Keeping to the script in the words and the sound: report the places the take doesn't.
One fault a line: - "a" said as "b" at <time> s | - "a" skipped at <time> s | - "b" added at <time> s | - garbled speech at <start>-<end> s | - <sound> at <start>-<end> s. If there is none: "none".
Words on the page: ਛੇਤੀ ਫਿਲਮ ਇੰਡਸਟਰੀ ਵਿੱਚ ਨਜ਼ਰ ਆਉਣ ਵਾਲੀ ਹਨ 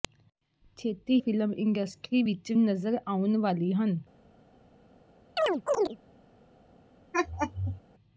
- chirp at 5.4-6.0 s
- laugh at 7.1-7.8 s